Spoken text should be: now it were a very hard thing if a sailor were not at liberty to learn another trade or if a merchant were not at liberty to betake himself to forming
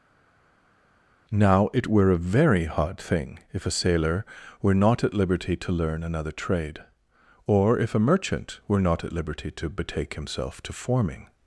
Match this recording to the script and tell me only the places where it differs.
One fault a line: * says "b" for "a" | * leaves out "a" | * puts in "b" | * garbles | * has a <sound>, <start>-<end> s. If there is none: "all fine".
all fine